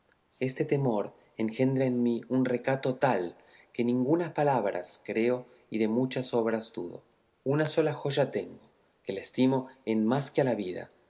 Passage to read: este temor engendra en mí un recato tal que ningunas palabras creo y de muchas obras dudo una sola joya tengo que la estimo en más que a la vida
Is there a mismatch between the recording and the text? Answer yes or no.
no